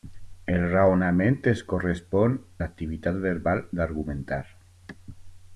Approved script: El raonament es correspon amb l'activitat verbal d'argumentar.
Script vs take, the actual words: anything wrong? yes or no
yes